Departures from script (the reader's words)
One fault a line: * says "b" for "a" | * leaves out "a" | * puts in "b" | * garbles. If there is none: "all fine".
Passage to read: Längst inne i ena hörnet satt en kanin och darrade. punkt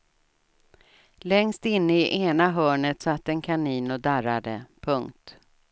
all fine